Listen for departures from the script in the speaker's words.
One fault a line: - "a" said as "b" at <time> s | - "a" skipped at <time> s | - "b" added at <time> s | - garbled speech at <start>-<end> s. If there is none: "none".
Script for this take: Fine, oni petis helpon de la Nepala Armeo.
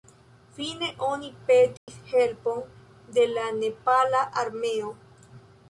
none